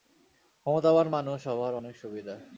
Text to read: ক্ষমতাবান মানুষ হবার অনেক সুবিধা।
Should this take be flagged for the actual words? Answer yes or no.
no